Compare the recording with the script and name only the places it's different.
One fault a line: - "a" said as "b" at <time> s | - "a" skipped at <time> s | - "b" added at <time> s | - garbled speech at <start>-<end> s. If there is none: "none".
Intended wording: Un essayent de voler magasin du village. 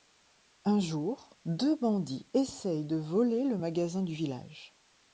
- "jour deux bandits" added at 0.8 s
- "le" added at 3.4 s